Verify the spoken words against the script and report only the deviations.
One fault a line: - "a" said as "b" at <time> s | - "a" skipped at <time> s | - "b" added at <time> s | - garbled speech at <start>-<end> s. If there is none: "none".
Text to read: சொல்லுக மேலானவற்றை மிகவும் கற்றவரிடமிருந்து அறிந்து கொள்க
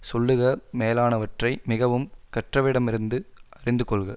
none